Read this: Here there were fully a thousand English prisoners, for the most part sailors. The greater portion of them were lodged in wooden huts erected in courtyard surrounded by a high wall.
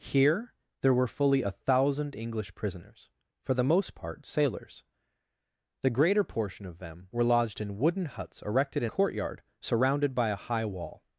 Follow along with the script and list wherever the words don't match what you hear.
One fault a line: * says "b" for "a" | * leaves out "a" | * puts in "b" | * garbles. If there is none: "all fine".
all fine